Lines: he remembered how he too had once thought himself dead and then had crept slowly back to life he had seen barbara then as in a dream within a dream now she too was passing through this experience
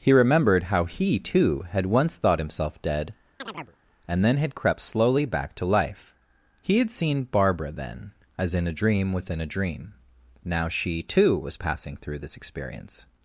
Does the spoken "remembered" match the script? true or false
true